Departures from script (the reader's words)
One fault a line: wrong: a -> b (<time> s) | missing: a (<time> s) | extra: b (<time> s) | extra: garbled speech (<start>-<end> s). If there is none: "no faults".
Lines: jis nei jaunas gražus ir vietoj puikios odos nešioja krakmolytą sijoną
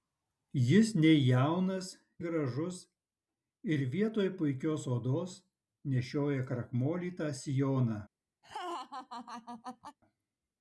no faults